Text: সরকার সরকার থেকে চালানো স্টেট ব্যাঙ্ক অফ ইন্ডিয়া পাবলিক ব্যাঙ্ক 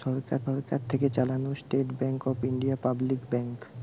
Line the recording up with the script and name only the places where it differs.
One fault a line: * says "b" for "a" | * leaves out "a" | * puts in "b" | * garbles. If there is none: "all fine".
all fine